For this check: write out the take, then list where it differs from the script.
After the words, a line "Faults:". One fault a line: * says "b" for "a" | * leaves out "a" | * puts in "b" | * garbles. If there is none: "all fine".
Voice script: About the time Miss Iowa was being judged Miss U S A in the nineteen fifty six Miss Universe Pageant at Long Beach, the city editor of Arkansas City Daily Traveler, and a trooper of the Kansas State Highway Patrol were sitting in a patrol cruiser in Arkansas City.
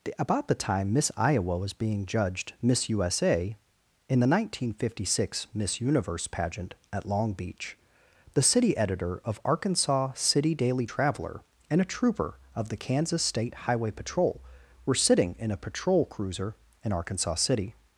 About the time Miss Iowa was being judged Miss U S A in the nineteen fifty six Miss Universe Pageant at Long Beach, the city editor of Arkansas City Daily Traveler, and a trooper of the Kansas State Highway Patrol were sitting in a patrol cruiser in Arkansas City.
Faults:
all fine